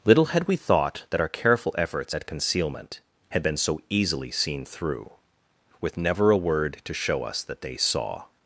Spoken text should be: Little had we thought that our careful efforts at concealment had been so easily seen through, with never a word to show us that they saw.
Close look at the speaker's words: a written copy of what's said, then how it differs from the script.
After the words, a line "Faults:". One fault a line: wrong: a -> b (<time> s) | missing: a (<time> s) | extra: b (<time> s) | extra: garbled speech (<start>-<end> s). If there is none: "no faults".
Little had we thought that our careful efforts at concealment had been so easily seen through, with never a word to show us that they saw.
Faults:
no faults